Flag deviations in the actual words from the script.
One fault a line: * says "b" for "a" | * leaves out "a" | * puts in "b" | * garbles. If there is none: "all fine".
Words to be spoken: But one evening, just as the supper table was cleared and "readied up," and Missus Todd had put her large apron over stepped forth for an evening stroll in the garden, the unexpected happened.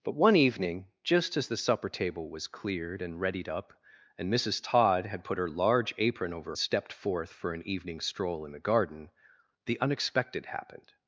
all fine